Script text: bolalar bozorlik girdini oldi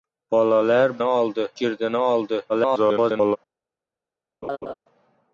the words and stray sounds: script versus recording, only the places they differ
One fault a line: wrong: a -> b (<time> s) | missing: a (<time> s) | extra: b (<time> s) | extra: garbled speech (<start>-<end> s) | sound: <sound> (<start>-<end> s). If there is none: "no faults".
wrong: bozorlik -> oldi (1.0 s)
extra: garbled speech (2.5-3.4 s)
sound: laugh (4.4-4.7 s)